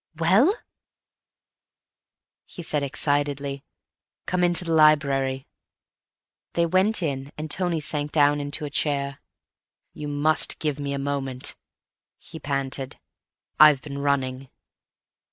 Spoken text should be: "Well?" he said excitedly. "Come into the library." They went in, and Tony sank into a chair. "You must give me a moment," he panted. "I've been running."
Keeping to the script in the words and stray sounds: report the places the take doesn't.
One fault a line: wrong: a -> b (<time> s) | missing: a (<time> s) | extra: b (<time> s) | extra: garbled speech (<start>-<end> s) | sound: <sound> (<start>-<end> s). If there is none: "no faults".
extra: down (8.1 s)